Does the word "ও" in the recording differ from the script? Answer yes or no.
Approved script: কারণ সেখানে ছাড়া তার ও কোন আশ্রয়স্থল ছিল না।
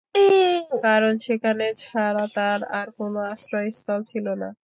yes